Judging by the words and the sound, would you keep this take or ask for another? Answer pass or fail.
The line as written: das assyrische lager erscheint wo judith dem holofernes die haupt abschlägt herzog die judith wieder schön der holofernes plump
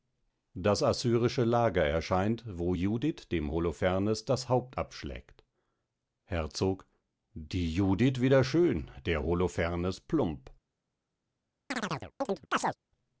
fail